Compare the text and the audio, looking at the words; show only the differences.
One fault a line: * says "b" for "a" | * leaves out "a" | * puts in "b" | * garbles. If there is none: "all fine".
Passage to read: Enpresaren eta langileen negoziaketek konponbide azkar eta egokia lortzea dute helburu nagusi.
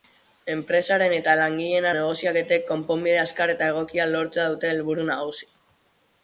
all fine